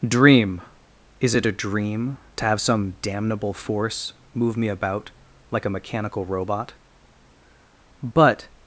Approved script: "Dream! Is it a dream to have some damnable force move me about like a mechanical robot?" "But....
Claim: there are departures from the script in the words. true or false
false